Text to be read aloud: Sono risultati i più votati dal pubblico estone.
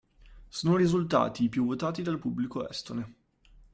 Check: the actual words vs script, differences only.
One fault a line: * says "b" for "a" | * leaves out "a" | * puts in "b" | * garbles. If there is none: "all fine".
all fine